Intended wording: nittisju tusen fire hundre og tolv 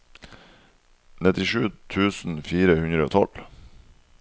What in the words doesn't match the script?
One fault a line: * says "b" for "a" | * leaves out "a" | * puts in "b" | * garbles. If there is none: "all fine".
all fine